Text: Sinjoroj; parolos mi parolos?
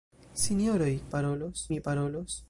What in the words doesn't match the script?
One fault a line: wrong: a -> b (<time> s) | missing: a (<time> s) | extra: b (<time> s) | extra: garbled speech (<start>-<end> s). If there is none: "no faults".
no faults